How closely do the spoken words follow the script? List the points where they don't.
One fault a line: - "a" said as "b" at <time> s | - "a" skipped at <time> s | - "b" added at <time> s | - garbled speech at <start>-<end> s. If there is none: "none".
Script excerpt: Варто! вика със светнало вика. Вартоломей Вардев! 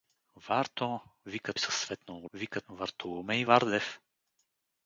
none